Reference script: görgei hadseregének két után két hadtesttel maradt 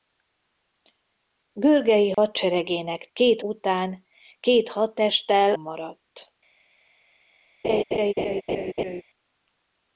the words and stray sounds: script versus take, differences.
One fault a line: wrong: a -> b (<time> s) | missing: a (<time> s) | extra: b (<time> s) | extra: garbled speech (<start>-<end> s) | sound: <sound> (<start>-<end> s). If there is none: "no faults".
sound: dropout (2.1-2.2 s)
sound: laugh (7.6-9.0 s)